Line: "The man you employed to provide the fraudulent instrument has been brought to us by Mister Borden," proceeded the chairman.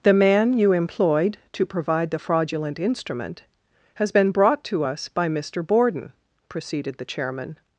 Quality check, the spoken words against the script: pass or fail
pass